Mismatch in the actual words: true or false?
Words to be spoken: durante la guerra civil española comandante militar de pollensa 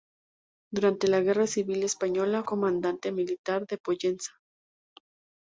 false